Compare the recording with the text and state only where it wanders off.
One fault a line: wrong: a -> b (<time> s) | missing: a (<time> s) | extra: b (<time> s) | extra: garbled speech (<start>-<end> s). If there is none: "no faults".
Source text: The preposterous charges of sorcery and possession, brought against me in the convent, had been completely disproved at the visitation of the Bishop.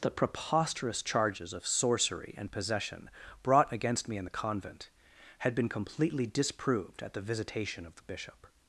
no faults